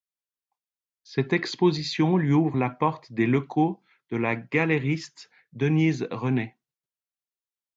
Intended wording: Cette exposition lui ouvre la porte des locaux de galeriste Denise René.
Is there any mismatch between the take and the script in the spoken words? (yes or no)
yes